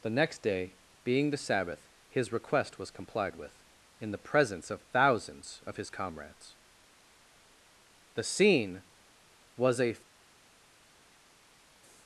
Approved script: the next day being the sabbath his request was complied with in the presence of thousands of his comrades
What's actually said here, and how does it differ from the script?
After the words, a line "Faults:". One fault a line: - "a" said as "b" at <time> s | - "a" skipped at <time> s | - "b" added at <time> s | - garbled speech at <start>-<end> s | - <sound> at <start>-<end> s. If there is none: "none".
the next day being the sabbath his request was complied with in the presence of thousands of his comrades the scene was a
Faults:
- "the scene was a" added at 8.2 s